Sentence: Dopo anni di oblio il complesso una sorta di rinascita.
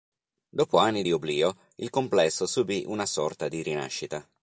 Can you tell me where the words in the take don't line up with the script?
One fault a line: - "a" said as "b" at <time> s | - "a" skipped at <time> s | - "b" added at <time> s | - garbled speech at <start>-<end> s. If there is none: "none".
- "subì" added at 2.5 s